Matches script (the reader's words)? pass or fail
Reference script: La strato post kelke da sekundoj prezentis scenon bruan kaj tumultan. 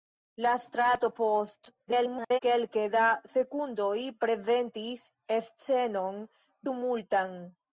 fail